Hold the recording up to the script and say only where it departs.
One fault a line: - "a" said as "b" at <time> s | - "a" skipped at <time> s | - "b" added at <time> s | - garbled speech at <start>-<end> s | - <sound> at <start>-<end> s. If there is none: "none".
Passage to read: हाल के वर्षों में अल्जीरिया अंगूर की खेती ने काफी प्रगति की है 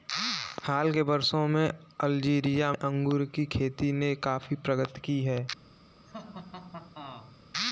- laugh at 6.1-7.4 s